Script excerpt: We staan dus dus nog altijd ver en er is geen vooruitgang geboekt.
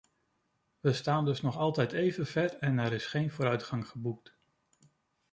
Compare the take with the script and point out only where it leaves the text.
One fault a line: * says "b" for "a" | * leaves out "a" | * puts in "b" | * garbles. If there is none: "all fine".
* leaves out "dus"
* puts in "even"